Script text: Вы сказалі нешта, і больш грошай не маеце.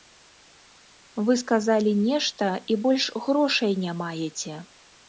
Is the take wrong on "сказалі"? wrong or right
right